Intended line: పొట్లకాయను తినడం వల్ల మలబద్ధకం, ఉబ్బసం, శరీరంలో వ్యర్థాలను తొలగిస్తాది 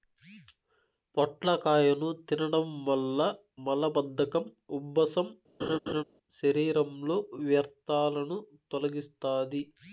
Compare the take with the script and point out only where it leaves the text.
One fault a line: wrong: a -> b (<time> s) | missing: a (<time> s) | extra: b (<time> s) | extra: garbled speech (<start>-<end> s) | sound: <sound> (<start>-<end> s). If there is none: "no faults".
sound: laugh (5.6-6.0 s)